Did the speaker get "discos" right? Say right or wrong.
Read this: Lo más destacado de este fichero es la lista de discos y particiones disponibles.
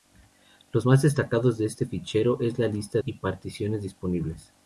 wrong